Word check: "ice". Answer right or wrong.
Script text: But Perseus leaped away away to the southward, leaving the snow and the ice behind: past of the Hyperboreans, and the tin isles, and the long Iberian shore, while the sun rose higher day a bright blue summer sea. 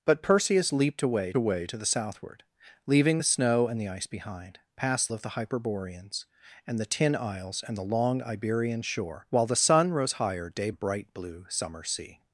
right